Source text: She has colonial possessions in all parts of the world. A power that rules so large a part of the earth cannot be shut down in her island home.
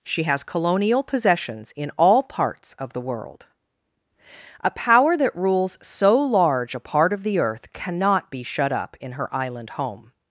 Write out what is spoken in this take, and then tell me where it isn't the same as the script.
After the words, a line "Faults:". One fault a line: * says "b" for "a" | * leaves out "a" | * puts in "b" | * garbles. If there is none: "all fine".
She has colonial possessions in all parts of the world. A power that rules so large a part of the earth cannot be shut up in her island home.
Faults:
* says "up" for "down"